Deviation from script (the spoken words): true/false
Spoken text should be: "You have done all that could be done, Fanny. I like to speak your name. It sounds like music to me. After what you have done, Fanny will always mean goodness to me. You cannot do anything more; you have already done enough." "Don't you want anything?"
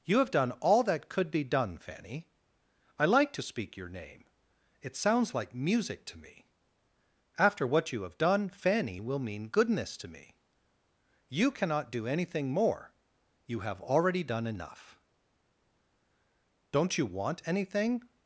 true